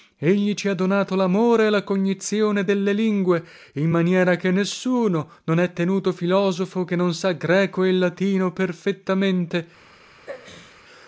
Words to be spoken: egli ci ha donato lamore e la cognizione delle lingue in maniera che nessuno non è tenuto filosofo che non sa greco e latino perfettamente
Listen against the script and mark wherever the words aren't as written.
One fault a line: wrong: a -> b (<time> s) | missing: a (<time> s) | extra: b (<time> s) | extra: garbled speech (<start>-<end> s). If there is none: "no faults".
no faults